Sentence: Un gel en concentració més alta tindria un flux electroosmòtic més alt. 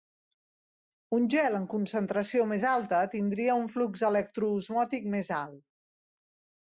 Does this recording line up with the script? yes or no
yes